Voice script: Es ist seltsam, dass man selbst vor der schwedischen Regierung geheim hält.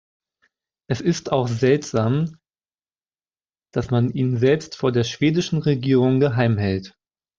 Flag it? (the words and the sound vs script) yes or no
yes